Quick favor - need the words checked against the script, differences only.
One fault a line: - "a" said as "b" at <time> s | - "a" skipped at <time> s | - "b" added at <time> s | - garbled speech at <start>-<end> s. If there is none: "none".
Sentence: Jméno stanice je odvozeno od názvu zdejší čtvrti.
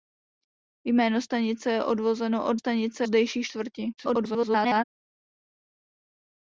- "názvu" said as "stanice" at 2.6 s
- garbled speech at 4.0-4.8 s